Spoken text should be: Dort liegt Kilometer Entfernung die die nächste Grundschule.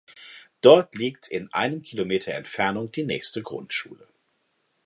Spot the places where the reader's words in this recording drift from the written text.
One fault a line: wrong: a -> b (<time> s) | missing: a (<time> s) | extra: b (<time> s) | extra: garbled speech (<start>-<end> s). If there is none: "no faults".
extra: in einem (1.3 s)
missing: die (3.0 s)